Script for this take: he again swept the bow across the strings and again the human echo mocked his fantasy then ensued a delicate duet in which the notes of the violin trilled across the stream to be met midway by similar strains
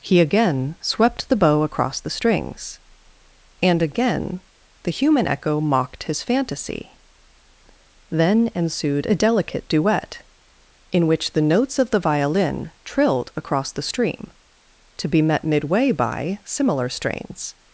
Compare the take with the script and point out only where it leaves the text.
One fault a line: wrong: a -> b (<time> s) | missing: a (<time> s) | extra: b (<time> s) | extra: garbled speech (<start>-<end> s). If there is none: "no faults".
no faults